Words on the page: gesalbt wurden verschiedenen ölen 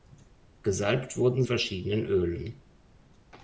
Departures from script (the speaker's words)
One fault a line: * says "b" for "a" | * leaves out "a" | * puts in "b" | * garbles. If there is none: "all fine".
all fine